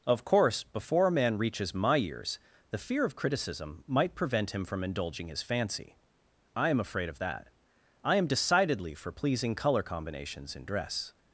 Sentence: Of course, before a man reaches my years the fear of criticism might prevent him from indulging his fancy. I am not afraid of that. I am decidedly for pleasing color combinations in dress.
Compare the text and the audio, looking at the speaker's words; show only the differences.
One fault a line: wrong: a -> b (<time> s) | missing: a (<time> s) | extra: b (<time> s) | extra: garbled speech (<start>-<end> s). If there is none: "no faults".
missing: not (6.8 s)